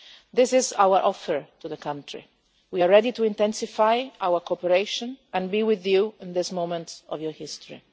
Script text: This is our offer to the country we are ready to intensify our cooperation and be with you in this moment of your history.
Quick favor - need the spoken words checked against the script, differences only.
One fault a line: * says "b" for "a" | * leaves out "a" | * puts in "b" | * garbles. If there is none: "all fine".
all fine